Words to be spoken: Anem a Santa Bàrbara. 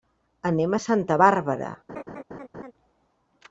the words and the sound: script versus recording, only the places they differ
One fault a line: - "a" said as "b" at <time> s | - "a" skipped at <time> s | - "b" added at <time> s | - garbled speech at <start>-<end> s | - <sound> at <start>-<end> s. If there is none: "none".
- laugh at 1.9-2.7 s